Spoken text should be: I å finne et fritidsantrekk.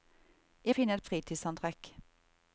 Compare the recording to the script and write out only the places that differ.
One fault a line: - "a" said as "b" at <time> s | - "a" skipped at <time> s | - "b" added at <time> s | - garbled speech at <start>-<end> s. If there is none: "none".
none